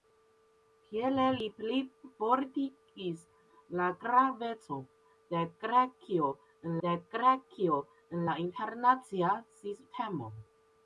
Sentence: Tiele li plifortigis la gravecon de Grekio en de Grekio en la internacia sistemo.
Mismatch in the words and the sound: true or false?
false